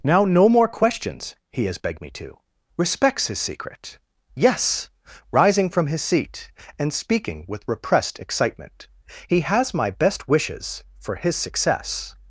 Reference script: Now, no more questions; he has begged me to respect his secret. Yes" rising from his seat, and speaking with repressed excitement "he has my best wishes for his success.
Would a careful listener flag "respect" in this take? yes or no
yes